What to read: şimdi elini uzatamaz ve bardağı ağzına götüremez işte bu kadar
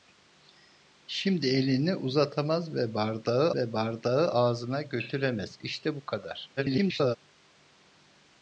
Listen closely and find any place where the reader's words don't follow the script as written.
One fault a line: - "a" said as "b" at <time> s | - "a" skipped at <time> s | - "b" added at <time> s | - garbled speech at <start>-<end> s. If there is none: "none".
- "ve bardağı" added at 3.5 s
- garbled speech at 6.6-7.2 s